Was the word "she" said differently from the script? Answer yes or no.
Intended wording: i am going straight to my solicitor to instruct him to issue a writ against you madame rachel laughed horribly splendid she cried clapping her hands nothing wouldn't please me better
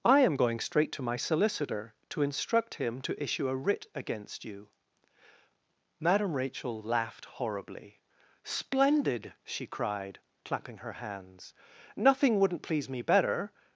no